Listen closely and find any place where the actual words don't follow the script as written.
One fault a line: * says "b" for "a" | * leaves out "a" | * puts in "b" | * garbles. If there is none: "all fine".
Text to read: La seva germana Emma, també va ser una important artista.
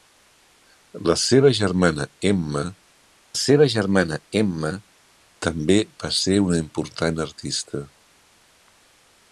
* puts in "seva germana Emma"